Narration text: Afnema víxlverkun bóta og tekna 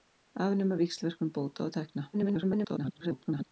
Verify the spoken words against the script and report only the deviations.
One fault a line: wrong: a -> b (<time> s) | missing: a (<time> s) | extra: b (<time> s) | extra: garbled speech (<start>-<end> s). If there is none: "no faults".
extra: garbled speech (2.1-3.5 s)